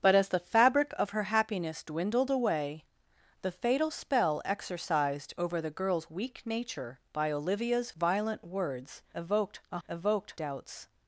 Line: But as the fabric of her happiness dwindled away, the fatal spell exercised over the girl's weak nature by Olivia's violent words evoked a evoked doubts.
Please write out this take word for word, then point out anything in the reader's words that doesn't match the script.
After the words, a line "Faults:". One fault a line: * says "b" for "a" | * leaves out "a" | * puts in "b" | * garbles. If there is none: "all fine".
But as the fabric of her happiness dwindled away, the fatal spell exercised over the girl's weak nature by Olivia's violent words evoked a evoked doubts.
Faults:
all fine